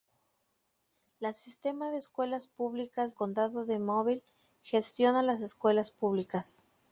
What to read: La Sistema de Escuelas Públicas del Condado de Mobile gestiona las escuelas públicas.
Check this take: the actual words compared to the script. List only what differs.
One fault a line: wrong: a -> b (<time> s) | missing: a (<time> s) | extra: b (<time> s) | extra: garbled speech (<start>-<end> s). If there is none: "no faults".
missing: del (3.1 s)